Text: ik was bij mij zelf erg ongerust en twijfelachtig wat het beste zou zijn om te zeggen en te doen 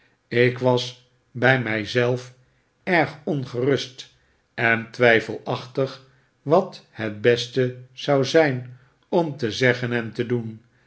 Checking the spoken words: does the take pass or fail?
pass